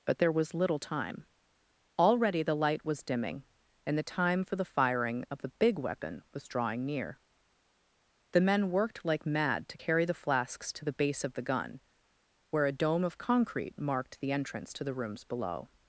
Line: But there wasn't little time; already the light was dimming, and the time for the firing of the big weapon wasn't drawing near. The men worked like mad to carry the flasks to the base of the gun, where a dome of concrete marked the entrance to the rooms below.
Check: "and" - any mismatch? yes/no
no